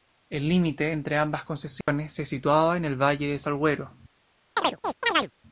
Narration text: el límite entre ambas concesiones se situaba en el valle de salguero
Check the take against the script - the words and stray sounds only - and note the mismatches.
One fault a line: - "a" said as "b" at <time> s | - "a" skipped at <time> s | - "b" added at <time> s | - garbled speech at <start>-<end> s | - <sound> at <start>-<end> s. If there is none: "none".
- dropout at 1.8-1.9 s
- chirp at 4.6-5.3 s